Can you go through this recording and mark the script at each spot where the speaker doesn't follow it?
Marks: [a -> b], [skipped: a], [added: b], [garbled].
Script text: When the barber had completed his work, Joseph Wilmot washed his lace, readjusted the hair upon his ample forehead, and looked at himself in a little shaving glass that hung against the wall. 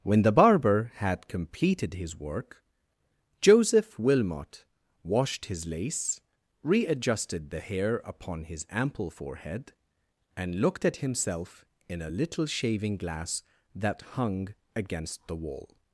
When the barber had completed his work, Joseph Wilmot washed his lace, readjusted the hair upon his ample forehead, and looked at himself in a little shaving glass that hung against the wall.